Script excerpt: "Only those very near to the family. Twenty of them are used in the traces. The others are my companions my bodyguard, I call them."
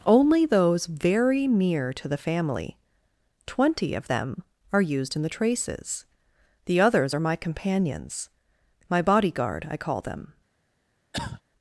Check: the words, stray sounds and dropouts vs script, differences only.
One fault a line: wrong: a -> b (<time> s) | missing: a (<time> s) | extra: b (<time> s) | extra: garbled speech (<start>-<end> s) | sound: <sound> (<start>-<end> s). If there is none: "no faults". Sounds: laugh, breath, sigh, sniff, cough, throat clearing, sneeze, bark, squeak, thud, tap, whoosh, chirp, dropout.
sound: cough (11.1-11.4 s)